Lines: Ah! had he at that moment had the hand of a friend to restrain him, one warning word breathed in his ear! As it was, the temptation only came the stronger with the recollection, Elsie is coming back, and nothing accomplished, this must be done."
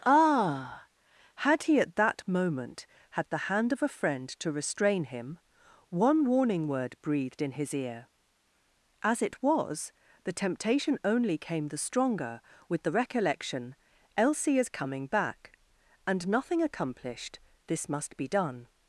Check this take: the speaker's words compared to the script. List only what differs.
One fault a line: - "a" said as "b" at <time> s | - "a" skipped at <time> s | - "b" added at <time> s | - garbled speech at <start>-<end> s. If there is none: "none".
none